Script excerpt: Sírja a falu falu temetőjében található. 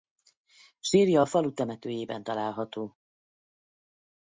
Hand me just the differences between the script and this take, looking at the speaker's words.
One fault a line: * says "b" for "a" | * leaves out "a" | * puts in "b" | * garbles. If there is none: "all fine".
* leaves out "falu"